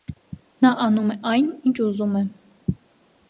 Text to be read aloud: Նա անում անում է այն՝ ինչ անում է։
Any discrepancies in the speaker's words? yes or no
yes